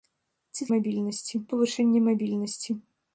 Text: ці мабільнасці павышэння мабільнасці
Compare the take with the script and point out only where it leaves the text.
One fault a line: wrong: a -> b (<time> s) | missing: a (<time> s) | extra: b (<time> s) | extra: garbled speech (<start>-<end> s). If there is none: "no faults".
no faults